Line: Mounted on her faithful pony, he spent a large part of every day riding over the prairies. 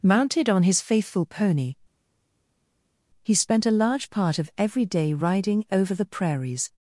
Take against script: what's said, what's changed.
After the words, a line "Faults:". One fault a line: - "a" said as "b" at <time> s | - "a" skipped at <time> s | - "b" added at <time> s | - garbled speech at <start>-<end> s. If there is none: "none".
Mounted on his faithful pony, he spent a large part of every day riding over the prairies.
Faults:
- "her" said as "his" at 0.6 s